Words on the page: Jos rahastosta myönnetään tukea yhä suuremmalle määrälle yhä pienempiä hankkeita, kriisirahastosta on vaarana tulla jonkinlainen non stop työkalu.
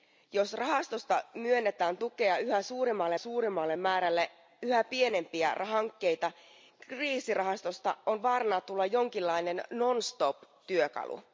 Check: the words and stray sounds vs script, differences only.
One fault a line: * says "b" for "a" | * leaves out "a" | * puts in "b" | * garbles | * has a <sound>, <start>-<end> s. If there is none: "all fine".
* puts in "suuremmalle"